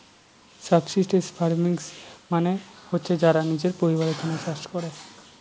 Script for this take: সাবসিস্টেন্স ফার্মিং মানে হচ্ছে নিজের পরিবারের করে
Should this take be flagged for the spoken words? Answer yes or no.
yes